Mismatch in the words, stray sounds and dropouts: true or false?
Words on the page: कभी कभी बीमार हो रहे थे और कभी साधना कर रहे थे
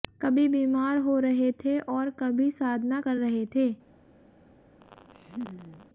true